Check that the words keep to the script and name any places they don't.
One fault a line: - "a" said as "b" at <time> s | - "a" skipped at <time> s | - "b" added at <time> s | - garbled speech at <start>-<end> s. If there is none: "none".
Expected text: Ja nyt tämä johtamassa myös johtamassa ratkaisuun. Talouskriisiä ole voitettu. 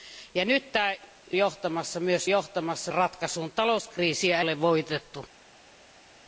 none